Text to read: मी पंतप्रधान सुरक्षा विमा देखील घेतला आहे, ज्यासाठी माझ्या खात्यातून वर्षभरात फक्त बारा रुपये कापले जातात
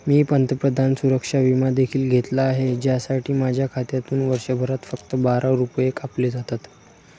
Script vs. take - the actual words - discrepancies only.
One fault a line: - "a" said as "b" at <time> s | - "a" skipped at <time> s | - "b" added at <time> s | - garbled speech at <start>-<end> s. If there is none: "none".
none